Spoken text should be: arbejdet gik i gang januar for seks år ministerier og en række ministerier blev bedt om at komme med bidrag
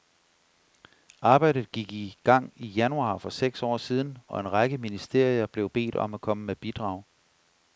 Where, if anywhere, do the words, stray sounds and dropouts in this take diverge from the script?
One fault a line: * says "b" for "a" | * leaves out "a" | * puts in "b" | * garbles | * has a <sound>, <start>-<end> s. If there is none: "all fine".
* puts in "i"
* says "siden" for "ministerier"